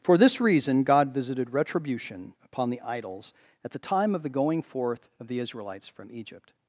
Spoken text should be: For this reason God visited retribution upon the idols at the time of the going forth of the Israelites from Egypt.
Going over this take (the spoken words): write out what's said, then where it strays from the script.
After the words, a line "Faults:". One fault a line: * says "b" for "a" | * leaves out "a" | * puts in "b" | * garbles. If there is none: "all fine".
For this reason God visited retribution upon the idols at the time of the going forth of the Israelites from Egypt.
Faults:
all fine